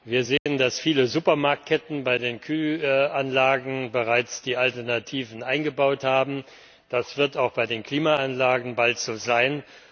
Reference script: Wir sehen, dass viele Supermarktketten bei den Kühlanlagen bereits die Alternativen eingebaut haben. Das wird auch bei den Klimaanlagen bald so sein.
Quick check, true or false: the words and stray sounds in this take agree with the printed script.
false